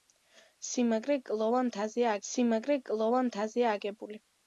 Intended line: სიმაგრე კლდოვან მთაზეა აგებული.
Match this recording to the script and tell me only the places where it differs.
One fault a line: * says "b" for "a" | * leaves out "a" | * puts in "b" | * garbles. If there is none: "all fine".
* puts in "სიმაგრე კლდოვან მთაზეა"